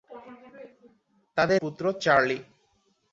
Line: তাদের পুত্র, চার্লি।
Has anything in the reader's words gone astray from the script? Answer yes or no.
no